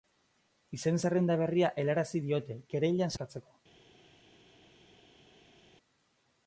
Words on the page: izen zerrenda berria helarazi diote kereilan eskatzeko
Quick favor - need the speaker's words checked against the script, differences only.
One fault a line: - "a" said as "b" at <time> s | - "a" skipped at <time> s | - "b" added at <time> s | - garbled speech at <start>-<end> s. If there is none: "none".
none